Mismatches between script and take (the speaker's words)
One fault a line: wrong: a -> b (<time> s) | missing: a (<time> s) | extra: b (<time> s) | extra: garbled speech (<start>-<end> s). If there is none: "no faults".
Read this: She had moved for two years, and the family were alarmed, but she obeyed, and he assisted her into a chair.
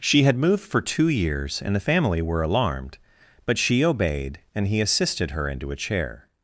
no faults